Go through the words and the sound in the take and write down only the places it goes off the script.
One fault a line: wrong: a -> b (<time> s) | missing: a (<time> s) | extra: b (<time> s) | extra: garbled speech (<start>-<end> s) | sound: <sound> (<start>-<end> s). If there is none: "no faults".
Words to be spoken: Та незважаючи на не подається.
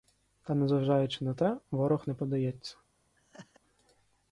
extra: те ворог (1.3 s)
sound: laugh (3.2-3.6 s)